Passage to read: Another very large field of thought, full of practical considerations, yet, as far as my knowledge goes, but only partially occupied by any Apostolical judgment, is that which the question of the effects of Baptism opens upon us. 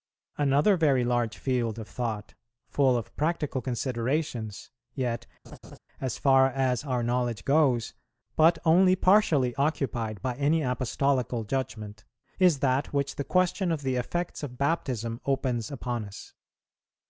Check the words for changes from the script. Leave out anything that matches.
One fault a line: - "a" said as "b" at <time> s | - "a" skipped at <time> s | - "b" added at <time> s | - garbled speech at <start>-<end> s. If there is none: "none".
- "my" said as "our" at 6.8 s